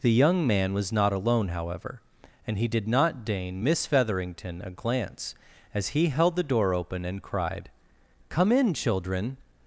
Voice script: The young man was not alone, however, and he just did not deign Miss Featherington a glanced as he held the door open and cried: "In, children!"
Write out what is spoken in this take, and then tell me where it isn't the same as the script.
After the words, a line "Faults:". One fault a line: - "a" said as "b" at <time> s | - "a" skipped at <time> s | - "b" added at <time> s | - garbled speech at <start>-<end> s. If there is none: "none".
The young man was not alone, however, and he did not deign Miss Featherington a glance as he held the door open and cried: "Come in, children!"
Faults:
- "just" skipped at 2.7 s
- "glanced" said as "glance" at 4.7 s
- "Come" added at 8.3 s